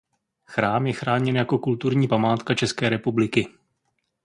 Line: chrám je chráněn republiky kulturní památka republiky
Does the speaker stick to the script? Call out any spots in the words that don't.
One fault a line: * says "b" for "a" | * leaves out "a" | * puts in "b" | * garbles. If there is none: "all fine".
* says "jako" for "republiky"
* puts in "české"